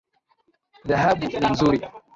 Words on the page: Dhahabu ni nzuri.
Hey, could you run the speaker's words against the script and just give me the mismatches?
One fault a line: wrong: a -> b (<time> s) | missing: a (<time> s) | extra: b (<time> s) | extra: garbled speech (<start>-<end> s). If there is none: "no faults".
no faults